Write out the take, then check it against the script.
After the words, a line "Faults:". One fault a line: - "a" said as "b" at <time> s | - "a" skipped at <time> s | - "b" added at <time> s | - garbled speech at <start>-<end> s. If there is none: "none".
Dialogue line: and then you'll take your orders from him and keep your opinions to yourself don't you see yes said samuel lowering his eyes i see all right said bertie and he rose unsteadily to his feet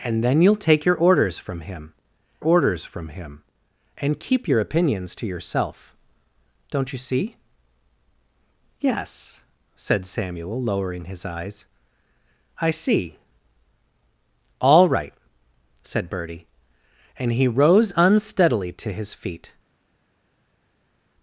and then you'll take your orders from him orders from him and keep your opinions to yourself don't you see yes said samuel lowering his eyes i see all right said bertie and he rose unsteadily to his feet
Faults:
- "orders from him" added at 2.4 s